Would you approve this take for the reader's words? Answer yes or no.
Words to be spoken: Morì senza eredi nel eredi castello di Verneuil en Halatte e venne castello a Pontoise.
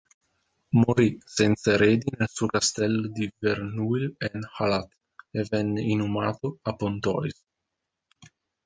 no